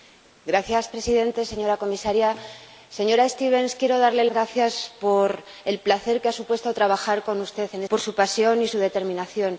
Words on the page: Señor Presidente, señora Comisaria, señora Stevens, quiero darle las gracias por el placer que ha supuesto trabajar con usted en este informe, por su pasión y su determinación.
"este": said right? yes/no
no